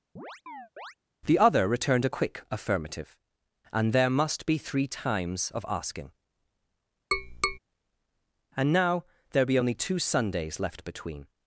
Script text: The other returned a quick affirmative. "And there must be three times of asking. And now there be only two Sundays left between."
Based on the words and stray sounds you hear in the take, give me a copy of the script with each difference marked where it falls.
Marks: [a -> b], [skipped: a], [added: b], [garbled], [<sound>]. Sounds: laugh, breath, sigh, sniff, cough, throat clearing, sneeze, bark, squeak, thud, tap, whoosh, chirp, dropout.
[chirp] The other returned a quick affirmative. "And there must be three times of asking. [tap] And now there be only two Sundays left between."